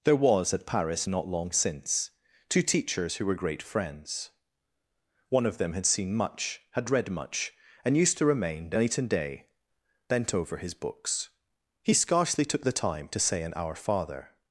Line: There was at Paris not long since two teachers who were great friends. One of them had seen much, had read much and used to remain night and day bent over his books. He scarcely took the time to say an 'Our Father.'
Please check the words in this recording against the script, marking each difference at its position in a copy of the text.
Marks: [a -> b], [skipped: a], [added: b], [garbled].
There was at Paris not long since two teachers who were great friends. One of them had seen much, had read much and used to remain night and day bent over his books. He scarcely took the time to say an 'Our Father.'